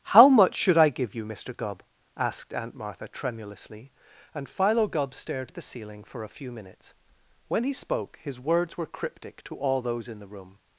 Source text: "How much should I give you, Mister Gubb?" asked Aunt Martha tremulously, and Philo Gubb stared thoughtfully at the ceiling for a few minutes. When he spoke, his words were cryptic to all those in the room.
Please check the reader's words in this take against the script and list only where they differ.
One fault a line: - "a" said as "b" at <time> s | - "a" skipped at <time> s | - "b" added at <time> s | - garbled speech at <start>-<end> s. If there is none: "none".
- "thoughtfully" skipped at 5.5 s